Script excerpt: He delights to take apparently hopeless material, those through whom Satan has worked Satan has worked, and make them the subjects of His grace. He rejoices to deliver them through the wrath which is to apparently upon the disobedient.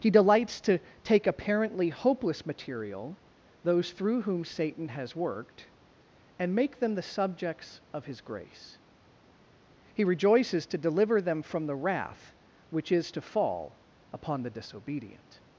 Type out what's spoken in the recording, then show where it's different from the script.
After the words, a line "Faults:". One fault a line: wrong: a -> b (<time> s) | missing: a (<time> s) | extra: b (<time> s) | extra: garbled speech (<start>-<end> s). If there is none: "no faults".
He delights to take apparently hopeless material, those through whom Satan has worked, and make them the subjects of His grace. He rejoices to deliver them from the wrath which is to fall upon the disobedient.
Faults:
missing: Satan has worked (5.7 s)
wrong: through -> from (11.4 s)
wrong: apparently -> fall (13.2 s)